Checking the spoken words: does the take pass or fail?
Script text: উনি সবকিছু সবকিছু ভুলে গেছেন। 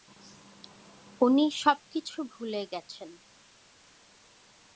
fail